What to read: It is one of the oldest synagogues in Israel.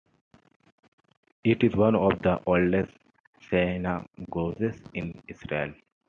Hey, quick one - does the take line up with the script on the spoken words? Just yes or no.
yes